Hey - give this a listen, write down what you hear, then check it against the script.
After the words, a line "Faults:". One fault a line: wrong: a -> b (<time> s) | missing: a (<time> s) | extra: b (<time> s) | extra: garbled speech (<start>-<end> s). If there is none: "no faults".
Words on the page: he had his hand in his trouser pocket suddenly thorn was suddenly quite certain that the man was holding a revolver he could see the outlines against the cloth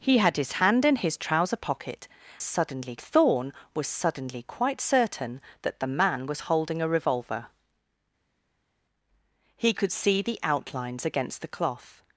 he had his hand in his trouser pocket suddenly thorn was suddenly quite certain that the man was holding a revolver he could see the outlines against the cloth
Faults:
no faults